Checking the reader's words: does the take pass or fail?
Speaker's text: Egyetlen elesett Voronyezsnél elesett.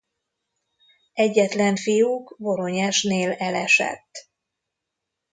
fail